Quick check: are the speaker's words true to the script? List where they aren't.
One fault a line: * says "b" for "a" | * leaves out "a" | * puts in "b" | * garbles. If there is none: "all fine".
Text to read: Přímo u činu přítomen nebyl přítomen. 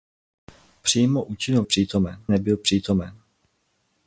all fine